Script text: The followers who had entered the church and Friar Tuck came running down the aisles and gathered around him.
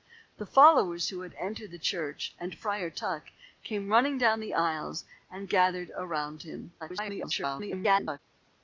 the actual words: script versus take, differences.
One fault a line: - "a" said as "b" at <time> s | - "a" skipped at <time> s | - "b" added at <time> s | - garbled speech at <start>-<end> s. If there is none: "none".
- garbled speech at 6.8-8.2 s